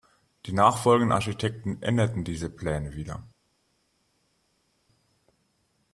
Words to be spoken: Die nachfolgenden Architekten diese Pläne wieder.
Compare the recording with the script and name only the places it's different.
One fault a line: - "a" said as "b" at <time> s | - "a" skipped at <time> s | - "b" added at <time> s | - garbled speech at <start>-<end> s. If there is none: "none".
- "änderten" added at 1.8 s